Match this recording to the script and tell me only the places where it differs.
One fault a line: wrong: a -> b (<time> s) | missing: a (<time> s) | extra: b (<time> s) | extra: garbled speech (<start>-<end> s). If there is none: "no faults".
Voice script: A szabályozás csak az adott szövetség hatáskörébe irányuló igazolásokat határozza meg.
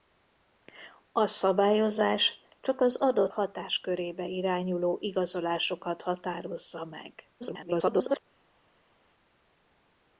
missing: szövetség (3.3 s)
extra: garbled speech (7.4-8.2 s)